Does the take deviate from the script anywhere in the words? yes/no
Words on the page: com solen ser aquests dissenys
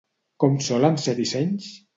yes